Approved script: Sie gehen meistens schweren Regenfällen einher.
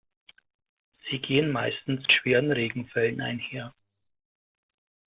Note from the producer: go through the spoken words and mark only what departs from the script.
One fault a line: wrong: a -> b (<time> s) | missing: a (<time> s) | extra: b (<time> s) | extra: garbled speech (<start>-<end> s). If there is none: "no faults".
no faults